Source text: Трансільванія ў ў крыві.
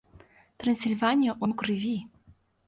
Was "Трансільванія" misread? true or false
false